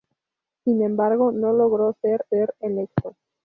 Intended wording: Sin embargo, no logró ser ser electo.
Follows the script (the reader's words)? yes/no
yes